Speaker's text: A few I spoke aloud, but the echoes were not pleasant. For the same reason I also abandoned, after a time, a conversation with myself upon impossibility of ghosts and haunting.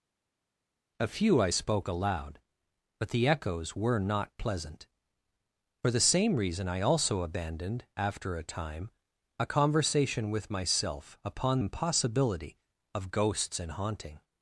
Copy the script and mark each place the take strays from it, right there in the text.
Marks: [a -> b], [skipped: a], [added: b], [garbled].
A few I spoke aloud, but the echoes were not pleasant. For the same reason I also abandoned, after a time, a conversation with myself upon impossibility of ghosts and haunting.